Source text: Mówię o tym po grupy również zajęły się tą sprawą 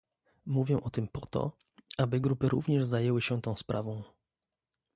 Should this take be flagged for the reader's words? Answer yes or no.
yes